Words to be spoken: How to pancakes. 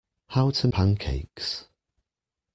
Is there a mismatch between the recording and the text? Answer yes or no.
no